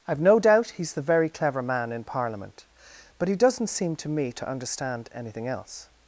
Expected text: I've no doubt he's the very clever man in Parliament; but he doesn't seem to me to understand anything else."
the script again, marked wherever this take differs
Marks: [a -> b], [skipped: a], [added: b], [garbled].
I've no doubt he's the very clever man in Parliament; but he doesn't seem to me to understand anything else."